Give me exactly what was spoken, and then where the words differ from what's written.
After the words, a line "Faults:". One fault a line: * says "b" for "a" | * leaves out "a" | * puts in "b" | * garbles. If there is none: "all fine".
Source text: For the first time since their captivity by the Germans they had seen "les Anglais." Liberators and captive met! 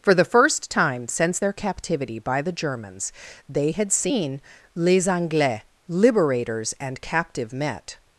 For the first time since their captivity by the Germans they had seen "les Anglais." Liberators and captive met!
Faults:
all fine